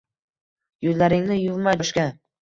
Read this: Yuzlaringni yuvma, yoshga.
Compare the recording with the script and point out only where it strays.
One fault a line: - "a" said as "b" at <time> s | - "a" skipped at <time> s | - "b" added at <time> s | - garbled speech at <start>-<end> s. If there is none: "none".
none